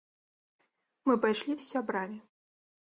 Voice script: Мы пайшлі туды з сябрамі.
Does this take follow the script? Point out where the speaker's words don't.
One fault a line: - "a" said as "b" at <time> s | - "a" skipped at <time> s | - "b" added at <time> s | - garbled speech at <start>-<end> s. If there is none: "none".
- "туды" skipped at 1.5 s